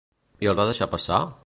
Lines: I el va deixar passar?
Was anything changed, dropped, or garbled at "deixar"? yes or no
no